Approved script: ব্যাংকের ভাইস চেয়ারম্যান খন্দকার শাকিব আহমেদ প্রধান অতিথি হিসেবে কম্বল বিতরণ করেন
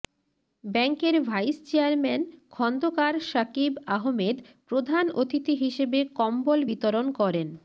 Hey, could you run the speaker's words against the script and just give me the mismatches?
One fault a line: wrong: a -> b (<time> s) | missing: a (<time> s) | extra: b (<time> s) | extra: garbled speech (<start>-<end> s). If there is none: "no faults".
no faults